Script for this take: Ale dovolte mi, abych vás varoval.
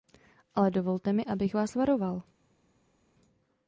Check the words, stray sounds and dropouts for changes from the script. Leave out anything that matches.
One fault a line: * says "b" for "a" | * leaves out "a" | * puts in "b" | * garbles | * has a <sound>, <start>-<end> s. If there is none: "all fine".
all fine